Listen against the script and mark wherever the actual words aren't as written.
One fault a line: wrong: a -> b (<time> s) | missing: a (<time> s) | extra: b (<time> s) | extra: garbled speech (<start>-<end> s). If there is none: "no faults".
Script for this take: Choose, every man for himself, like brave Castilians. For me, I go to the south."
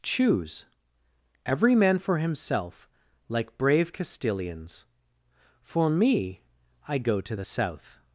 no faults